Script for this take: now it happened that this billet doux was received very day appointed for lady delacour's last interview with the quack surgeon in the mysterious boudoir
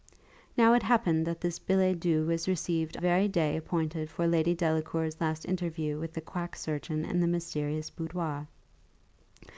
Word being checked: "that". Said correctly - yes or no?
yes